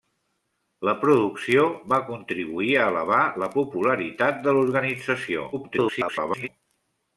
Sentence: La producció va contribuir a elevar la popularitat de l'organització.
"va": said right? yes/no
yes